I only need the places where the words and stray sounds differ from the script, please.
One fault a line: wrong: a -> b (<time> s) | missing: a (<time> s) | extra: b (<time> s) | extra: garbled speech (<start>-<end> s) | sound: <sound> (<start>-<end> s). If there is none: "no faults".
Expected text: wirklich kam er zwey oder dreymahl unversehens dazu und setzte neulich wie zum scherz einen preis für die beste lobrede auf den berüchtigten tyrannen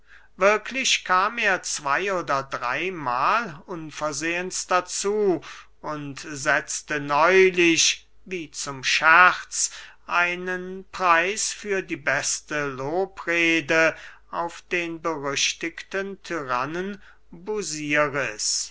no faults